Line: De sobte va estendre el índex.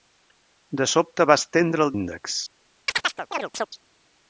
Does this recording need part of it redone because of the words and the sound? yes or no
yes